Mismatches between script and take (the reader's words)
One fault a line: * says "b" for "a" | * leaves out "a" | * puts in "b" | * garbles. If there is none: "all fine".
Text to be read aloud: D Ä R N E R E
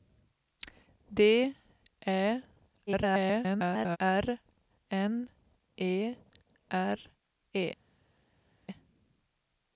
* garbles